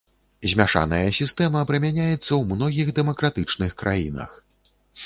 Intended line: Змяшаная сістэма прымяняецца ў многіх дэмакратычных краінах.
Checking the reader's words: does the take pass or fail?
pass